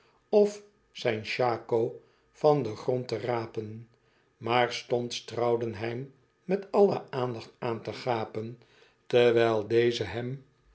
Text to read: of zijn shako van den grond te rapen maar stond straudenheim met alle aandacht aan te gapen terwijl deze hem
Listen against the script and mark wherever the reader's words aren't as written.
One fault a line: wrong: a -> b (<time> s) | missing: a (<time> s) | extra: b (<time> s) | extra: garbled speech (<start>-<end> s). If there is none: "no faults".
no faults